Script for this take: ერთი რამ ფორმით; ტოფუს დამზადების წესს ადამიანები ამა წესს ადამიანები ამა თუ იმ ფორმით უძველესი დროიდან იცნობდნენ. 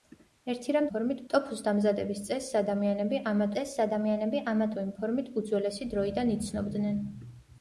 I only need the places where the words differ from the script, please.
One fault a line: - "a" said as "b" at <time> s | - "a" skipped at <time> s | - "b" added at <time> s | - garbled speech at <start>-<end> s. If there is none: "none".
none